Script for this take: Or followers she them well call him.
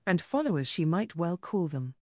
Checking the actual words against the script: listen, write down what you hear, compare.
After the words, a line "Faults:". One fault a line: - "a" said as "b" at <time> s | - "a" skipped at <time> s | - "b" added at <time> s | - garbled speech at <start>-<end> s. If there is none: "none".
And followers she might well call them.
Faults:
- "Or" said as "And" at 0.1 s
- "them" said as "might" at 0.8 s
- "him" said as "them" at 1.7 s